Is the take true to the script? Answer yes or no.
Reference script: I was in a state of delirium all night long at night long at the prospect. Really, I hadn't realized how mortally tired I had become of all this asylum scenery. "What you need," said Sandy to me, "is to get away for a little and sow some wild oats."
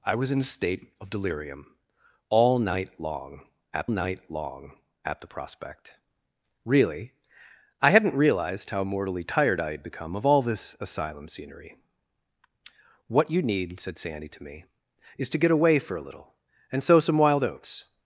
yes